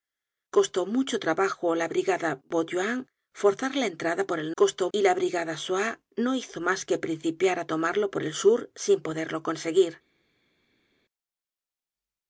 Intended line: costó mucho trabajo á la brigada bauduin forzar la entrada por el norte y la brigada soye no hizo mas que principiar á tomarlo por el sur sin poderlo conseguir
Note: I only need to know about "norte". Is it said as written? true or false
false